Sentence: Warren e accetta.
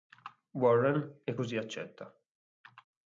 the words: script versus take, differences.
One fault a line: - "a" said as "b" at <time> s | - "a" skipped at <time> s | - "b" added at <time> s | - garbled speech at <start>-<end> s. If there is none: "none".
- "così" added at 1.3 s